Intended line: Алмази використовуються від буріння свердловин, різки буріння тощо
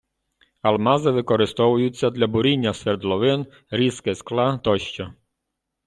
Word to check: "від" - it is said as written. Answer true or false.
false